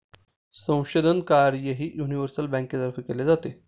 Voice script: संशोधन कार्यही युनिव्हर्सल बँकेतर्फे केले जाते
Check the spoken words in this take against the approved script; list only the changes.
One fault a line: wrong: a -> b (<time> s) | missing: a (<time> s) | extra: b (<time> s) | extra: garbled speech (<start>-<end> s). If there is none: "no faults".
no faults